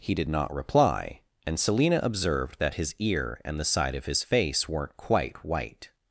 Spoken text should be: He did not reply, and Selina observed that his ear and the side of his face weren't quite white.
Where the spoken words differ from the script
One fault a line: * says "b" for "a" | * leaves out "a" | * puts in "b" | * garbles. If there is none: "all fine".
all fine